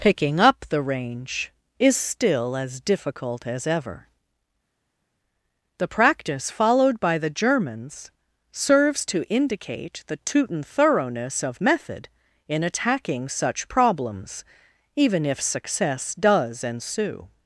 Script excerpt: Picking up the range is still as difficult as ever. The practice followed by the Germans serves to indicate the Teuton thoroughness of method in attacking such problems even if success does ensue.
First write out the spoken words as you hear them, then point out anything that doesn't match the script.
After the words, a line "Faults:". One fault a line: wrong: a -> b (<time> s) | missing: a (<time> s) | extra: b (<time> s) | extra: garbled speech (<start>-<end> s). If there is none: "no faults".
Picking up the range is still as difficult as ever. The practice followed by the Germans serves to indicate the Teuton thoroughness of method in attacking such problems even if success does ensue.
Faults:
no faults